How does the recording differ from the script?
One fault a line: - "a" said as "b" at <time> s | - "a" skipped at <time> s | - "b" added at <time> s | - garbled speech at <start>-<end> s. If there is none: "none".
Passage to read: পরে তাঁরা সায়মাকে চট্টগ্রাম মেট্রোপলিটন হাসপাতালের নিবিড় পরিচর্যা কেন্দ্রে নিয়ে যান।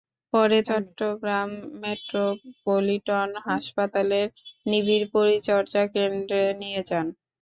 - "তাঁরা সায়মাকে" skipped at 0.6 s